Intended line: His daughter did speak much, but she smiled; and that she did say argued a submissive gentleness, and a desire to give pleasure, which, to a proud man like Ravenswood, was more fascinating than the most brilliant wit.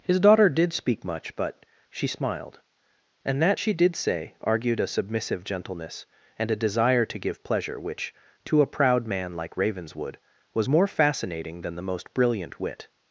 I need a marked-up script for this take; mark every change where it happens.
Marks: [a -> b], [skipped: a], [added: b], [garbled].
His daughter did speak much, but she smiled; and that she did say argued a submissive gentleness, and a desire to give pleasure, which, to a proud man like Ravenswood, was more fascinating than the most brilliant wit.